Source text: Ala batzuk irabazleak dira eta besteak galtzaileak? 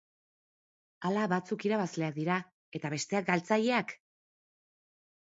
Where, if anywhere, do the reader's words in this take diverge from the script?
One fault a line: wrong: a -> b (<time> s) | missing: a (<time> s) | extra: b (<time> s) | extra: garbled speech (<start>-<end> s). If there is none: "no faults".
no faults